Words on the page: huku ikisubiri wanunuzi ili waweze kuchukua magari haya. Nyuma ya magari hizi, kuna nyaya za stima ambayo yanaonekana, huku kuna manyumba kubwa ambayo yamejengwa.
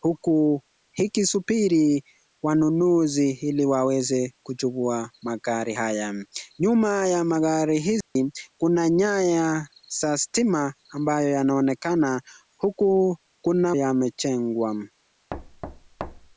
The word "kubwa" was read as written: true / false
false